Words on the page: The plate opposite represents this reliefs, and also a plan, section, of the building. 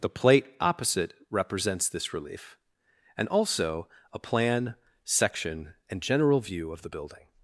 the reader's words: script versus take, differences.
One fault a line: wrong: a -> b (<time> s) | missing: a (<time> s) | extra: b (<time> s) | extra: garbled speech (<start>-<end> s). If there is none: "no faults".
wrong: reliefs -> relief (2.1 s)
extra: and general view (5.9 s)